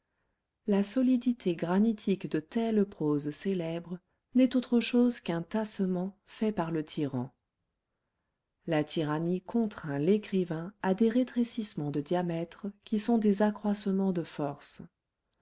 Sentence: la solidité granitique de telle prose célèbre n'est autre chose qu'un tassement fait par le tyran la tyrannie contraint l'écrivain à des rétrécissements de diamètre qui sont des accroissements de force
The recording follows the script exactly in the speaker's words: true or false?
true